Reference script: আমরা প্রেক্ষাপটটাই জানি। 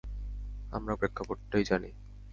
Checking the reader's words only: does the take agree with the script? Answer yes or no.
yes